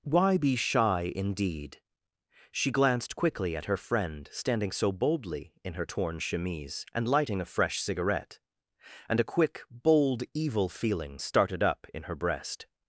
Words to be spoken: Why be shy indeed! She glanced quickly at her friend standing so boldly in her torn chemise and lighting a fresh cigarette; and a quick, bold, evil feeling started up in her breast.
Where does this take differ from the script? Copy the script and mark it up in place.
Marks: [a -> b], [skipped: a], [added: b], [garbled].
Why be shy indeed! She glanced quickly at her friend standing so boldly in her torn chemise and lighting a fresh cigarette; and a quick, bold, evil feeling started up in her breast.